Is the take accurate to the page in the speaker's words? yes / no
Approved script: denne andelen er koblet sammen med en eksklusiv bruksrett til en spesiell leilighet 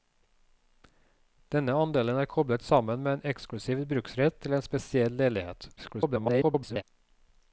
no